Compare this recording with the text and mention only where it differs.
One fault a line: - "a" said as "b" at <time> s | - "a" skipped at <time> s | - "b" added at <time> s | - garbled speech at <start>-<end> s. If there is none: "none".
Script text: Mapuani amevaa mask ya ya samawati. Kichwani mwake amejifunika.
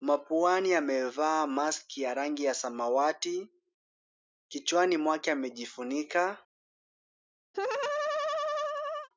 - "rangi" added at 2.1 s